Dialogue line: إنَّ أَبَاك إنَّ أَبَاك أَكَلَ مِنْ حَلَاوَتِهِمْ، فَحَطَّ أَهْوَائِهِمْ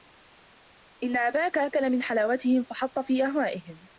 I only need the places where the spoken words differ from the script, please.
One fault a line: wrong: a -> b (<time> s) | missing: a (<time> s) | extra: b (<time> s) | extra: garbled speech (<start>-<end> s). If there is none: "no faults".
missing: إنَّ أَبَاك (1.6 s)
extra: فِي (3.0 s)